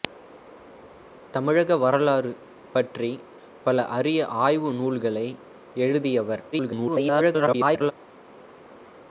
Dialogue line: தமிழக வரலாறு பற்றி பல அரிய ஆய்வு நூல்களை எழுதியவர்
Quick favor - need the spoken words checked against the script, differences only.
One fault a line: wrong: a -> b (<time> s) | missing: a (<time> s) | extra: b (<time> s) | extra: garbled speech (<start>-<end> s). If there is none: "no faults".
extra: garbled speech (6.5-7.9 s)